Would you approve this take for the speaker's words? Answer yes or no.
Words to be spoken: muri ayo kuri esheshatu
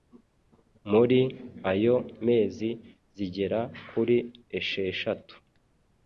no